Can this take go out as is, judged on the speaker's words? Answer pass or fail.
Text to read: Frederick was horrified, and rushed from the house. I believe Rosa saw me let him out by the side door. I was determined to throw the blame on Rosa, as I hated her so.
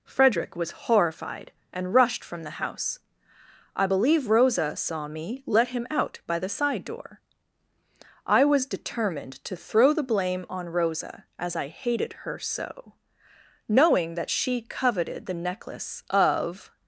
fail